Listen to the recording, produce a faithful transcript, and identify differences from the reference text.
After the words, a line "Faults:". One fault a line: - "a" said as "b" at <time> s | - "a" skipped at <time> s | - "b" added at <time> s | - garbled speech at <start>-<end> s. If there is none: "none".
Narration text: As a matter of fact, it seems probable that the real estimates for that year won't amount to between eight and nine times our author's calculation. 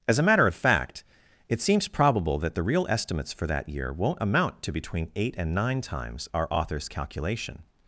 As a matter of fact, it seems probable that the real estimates for that year won't amount to between eight and nine times our author's calculation.
Faults:
none